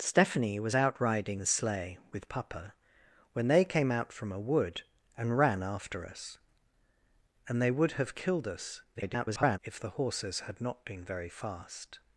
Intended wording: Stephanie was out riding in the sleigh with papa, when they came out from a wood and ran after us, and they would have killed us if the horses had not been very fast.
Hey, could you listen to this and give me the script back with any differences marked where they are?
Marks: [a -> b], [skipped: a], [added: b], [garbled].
Stephanie was out riding [skipped: in] the sleigh with papa, when they came out from a wood and ran after us, and they would have killed us [garbled] if the horses had not been very fast.